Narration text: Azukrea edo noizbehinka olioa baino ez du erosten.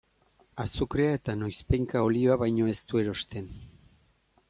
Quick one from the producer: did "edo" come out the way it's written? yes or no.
no